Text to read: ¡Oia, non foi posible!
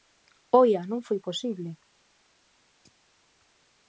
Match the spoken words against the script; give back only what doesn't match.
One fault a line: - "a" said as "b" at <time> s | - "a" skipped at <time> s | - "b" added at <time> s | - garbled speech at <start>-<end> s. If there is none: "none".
none